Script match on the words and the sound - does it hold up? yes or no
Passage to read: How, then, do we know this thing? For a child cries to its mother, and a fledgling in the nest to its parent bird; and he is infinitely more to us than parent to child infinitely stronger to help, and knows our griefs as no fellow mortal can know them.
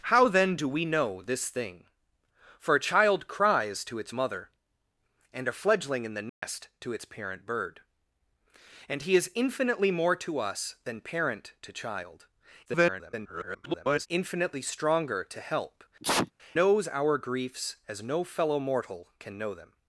no